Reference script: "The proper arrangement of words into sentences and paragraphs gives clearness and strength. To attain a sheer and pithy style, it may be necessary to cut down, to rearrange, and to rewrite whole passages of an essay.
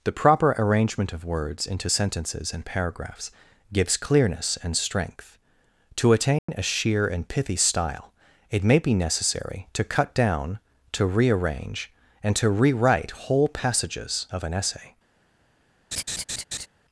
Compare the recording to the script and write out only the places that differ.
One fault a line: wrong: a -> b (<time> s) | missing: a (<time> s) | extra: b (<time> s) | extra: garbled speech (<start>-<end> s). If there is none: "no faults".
no faults